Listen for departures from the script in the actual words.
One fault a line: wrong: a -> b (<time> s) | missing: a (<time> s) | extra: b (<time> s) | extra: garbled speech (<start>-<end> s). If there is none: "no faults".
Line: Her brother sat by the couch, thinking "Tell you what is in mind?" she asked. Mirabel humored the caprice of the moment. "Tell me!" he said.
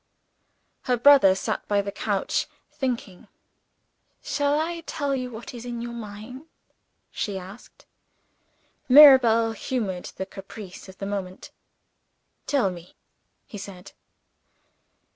extra: Shall I (4.2 s)
extra: your (5.8 s)